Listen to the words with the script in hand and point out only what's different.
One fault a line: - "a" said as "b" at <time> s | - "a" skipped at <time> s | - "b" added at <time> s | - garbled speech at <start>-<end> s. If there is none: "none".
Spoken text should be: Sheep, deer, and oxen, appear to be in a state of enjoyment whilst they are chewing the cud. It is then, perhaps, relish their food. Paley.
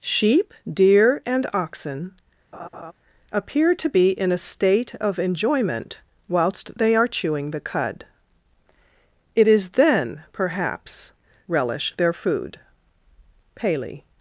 none